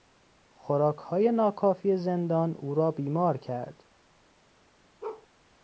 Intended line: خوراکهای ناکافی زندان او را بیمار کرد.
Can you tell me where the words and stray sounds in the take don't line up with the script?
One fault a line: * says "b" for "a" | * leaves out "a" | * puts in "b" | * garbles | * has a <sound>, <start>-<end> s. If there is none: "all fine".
* has a bark, 5.0-5.3 s